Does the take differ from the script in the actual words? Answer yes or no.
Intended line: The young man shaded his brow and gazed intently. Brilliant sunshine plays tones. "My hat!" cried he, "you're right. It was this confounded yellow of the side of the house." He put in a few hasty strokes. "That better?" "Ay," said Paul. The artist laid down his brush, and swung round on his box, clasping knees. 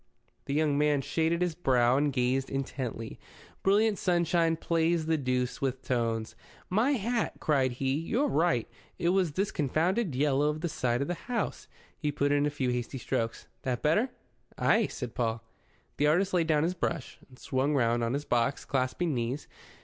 yes